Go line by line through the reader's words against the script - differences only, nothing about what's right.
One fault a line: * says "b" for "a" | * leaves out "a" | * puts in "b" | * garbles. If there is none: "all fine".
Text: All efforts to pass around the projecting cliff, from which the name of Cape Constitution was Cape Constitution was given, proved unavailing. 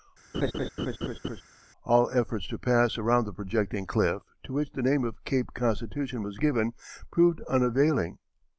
* says "to" for "from"
* leaves out "Cape Constitution was"